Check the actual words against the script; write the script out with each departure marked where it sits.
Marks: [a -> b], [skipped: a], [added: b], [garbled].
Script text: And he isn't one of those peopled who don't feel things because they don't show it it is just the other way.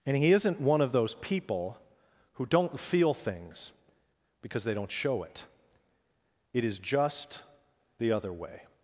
And he isn't one of those [peopled -> people] who don't feel things because they don't show it it is just the other way.